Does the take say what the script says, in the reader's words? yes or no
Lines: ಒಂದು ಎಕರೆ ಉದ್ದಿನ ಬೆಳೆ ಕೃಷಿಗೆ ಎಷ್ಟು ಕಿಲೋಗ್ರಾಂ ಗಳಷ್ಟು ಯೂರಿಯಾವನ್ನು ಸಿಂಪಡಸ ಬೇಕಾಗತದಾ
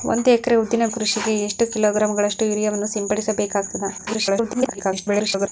no